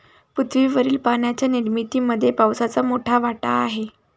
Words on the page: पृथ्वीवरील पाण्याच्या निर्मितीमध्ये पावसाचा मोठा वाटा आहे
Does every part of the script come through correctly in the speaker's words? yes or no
yes